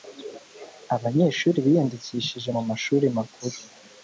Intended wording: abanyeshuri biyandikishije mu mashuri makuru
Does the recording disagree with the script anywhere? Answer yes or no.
no